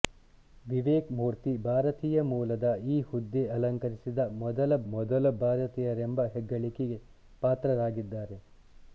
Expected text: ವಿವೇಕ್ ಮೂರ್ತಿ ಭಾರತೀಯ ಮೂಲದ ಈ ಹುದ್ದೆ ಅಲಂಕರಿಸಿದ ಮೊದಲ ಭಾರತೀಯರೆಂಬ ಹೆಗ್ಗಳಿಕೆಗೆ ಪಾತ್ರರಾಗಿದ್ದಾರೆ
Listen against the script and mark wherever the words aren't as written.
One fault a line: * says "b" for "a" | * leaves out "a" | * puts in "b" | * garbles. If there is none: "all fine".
* puts in "ಮೊದಲ"